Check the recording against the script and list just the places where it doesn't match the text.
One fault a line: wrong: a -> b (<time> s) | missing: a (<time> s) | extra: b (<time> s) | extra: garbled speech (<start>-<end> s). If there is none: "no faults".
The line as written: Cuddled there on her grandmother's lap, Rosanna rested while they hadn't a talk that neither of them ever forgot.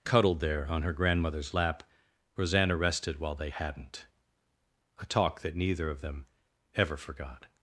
no faults